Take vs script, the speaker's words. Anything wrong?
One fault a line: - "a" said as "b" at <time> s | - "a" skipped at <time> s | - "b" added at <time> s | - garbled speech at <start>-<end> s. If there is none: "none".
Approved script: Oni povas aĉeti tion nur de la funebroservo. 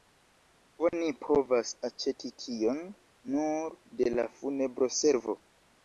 none